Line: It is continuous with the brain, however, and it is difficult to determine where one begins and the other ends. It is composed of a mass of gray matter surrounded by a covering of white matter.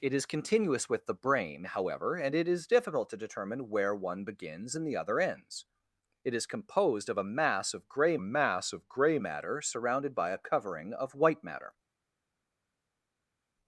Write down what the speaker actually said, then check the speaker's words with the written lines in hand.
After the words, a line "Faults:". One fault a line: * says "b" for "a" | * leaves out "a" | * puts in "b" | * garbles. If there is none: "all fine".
It is continuous with the brain, however, and it is difficult to determine where one begins and the other ends. It is composed of a mass of gray mass of gray matter surrounded by a covering of white matter.
Faults:
* puts in "mass of gray"